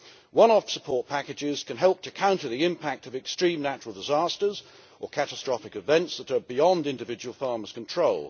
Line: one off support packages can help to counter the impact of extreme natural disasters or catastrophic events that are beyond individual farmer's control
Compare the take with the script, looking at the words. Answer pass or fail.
pass